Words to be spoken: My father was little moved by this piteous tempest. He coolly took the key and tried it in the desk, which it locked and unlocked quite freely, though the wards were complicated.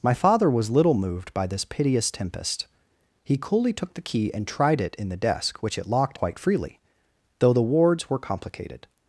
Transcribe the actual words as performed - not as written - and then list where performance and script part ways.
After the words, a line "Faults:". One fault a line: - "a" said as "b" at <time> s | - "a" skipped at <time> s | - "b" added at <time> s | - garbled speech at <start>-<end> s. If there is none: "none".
My father was little moved by this piteous tempest. He coolly took the key and tried it in the desk, which it locked quite freely, though the wards were complicated.
Faults:
- "and unlocked" skipped at 6.2 s